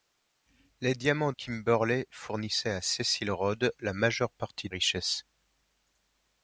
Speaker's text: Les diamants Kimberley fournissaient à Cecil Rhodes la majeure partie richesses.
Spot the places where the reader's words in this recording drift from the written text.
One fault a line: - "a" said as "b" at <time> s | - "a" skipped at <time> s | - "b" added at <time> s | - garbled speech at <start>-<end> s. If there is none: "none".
none